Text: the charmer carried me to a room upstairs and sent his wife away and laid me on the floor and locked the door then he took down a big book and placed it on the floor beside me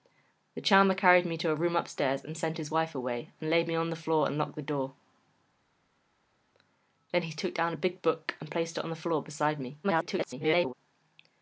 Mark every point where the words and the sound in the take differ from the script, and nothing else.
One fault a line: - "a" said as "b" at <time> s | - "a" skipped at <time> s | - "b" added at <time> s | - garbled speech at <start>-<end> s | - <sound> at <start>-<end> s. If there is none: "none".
- garbled speech at 9.8-10.7 s